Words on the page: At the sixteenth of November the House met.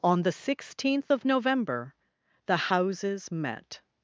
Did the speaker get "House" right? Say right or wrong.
wrong